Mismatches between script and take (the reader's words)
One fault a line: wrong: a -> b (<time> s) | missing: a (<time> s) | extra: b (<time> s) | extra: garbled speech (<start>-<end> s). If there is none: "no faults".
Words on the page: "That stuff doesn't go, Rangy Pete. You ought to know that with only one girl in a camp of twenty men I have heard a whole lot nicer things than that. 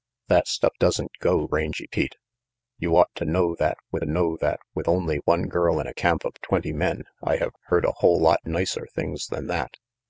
extra: know that with (4.0 s)